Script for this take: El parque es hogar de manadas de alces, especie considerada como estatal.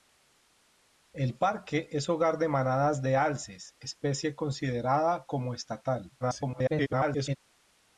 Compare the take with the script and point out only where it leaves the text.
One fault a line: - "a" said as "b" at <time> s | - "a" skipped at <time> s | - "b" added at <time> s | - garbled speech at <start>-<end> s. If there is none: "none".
- garbled speech at 6.2-7.4 s